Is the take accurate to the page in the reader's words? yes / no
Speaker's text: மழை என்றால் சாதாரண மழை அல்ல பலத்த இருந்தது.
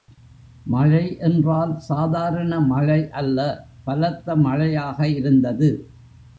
no